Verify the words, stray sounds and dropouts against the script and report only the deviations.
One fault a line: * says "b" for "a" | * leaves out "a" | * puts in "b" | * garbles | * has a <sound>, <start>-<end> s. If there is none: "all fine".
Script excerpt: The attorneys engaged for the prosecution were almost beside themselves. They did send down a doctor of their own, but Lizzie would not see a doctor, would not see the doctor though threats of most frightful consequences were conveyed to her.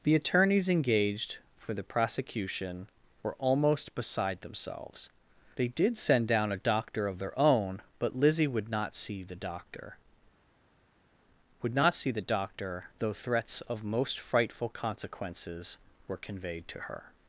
* says "the" for "a"